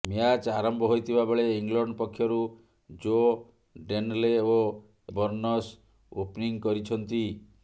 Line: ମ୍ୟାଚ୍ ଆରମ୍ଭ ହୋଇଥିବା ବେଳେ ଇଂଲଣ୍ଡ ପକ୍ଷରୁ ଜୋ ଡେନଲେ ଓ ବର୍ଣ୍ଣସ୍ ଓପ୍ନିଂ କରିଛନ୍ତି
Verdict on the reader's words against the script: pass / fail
pass